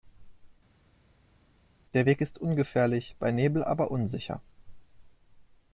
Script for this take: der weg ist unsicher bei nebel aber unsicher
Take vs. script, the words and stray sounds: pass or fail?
fail